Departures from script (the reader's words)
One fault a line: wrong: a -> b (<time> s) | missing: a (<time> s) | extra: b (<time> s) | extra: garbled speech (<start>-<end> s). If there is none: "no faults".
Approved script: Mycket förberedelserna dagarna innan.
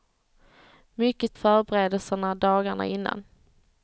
no faults